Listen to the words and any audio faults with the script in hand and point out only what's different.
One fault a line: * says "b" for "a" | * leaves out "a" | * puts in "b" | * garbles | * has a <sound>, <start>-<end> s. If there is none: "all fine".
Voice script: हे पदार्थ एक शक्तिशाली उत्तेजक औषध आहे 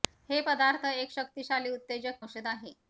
all fine